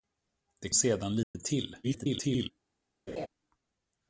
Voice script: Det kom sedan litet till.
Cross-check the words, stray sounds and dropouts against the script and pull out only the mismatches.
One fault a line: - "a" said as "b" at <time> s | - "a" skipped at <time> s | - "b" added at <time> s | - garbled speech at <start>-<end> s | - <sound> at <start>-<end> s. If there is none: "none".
- "kom" skipped at 0.7 s
- dropout at 1.2-1.3 s
- garbled speech at 1.8-2.5 s
- laugh at 3.1-3.3 s